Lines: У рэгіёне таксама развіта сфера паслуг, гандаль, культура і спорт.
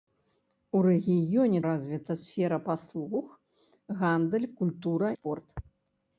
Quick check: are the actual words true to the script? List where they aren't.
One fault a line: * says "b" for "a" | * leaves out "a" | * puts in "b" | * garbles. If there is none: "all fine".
* leaves out "таксама"
* leaves out "і"